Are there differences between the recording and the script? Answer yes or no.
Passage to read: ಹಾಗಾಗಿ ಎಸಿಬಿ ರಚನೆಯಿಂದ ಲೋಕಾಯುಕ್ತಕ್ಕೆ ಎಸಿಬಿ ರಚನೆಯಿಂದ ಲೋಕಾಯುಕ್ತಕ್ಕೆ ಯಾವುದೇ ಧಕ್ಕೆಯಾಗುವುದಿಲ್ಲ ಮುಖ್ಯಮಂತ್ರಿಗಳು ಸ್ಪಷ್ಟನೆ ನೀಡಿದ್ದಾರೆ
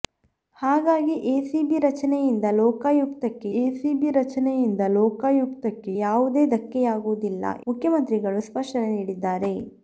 no